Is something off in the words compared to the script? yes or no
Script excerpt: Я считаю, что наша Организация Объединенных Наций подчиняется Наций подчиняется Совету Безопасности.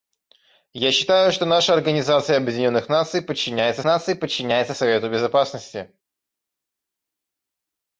no